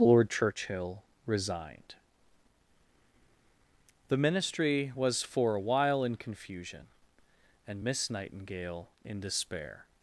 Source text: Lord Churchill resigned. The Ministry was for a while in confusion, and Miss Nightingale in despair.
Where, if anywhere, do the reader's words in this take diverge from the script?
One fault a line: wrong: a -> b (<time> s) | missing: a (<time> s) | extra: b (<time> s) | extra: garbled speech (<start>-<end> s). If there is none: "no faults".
no faults